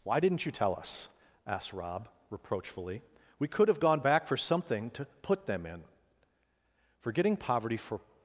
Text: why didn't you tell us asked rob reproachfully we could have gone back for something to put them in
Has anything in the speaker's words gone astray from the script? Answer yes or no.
yes